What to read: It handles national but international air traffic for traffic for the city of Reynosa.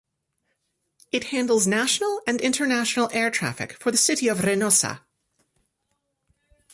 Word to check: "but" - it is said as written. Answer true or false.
false